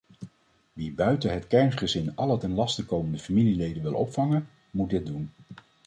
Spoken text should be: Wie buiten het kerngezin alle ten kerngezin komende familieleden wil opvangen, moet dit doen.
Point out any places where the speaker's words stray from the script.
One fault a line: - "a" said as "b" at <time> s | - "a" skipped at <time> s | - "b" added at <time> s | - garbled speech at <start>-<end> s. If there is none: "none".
- "kerngezin" said as "laste" at 2.5 s